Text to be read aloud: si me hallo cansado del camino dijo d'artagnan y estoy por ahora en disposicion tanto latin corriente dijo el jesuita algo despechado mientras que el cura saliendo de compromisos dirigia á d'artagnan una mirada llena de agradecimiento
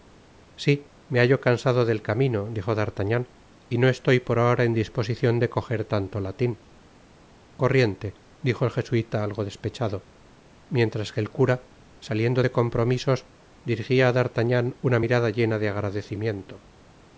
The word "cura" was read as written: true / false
true